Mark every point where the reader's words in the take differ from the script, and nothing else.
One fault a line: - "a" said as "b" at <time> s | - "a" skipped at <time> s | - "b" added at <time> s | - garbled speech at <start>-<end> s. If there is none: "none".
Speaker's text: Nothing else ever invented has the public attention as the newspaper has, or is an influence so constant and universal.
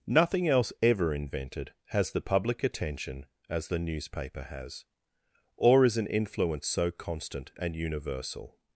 none